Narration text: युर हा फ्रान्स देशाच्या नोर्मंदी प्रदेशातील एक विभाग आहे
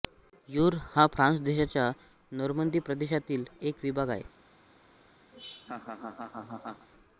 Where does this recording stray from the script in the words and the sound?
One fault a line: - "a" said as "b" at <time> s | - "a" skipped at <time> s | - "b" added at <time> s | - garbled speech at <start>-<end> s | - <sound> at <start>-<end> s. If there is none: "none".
- laugh at 5.3-6.9 s